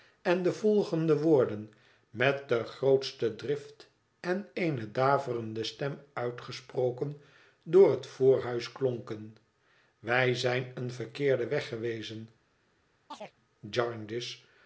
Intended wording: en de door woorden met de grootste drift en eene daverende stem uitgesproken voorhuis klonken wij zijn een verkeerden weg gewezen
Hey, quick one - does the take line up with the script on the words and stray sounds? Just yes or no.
no